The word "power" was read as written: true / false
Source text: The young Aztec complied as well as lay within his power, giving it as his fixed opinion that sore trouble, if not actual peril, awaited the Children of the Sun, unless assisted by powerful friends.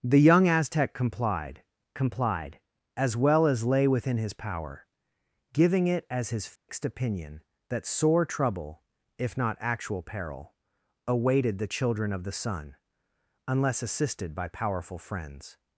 true